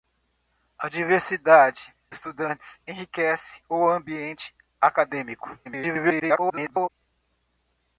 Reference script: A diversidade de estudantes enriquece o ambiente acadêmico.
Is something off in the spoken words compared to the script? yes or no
yes